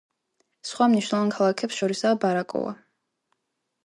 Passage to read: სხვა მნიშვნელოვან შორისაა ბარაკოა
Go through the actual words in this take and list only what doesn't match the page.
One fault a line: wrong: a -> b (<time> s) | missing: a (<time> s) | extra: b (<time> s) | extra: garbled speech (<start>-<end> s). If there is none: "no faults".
extra: ქალაქებს (1.3 s)